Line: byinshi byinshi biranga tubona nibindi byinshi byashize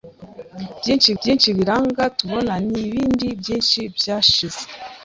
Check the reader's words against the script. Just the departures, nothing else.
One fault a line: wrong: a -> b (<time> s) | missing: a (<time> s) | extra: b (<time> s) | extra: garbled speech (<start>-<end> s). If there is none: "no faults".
no faults